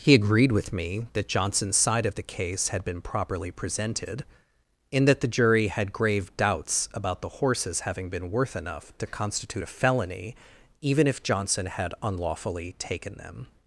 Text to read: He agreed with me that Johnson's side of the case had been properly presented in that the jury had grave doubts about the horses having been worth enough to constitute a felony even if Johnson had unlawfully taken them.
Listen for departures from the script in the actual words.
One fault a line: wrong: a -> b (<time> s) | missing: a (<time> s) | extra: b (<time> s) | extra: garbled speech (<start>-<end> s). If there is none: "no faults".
no faults